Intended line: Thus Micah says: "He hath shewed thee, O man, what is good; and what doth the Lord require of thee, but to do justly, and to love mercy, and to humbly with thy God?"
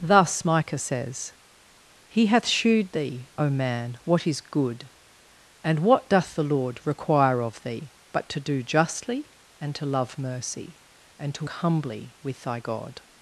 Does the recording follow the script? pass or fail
pass